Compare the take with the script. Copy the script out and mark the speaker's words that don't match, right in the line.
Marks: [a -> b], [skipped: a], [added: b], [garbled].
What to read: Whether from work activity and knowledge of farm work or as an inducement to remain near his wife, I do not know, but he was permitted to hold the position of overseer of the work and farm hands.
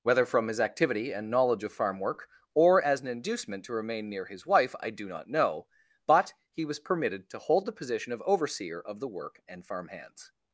Whether from [work -> his] activity and knowledge of farm work or as an inducement to remain near his wife, I do not know, but he was permitted to hold the position of overseer of the work and farm hands.